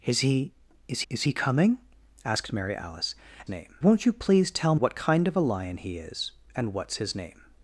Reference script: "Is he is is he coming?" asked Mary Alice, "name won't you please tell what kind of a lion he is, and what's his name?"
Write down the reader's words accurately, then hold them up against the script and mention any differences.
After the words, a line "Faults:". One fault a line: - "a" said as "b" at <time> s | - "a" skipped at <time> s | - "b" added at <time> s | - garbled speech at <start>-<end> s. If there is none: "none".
"Is he is is he coming?" asked Mary Alice, "name won't you please tell what kind of a lion he is, and what's his name?"
Faults:
none